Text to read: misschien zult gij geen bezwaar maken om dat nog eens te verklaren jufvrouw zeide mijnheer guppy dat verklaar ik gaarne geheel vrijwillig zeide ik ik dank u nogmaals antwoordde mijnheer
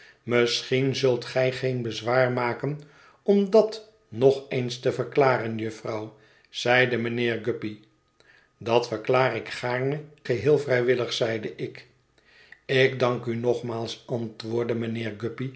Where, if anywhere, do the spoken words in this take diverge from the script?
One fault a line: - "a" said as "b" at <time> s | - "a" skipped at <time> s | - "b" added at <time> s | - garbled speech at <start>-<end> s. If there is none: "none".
none